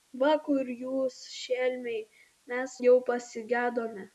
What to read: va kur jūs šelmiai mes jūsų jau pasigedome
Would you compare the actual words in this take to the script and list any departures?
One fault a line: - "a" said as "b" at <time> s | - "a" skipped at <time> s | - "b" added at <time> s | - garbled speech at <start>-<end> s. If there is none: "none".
- "jūsų" skipped at 2.8 s